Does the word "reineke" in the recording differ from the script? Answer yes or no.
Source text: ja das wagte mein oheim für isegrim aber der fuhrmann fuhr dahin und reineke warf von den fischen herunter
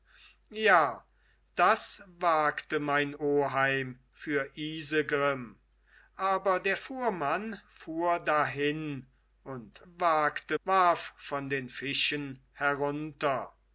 yes